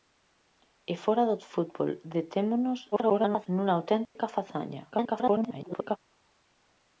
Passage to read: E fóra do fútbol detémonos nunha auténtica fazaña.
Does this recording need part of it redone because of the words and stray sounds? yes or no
yes